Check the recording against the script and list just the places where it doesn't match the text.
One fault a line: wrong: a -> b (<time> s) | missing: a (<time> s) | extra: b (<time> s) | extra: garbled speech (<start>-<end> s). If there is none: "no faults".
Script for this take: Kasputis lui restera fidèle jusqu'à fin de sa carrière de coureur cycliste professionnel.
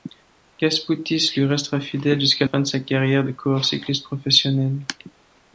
no faults